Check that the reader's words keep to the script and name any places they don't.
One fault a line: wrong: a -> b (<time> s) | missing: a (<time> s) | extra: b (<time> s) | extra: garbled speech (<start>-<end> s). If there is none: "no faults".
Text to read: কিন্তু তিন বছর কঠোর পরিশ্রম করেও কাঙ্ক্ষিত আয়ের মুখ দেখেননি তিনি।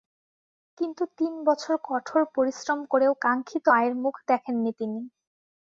no faults